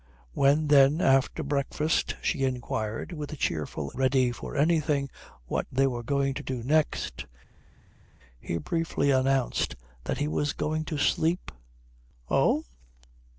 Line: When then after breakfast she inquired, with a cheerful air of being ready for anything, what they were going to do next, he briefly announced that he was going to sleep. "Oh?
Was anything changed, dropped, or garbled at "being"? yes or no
yes